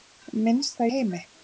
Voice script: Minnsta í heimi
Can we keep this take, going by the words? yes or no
yes